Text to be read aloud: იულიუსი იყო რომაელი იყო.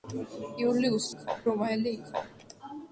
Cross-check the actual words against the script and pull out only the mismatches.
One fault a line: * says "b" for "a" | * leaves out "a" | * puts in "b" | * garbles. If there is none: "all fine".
all fine